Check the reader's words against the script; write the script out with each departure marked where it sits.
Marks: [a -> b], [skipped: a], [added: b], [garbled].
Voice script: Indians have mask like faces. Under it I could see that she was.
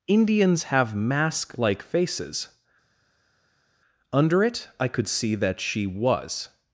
Indians have mask like faces. Under it I could see that she was.